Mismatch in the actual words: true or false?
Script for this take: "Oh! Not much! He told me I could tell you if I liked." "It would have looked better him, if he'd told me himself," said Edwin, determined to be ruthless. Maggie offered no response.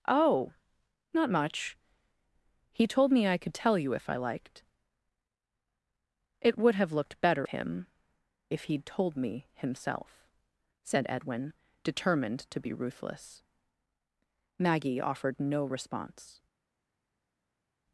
false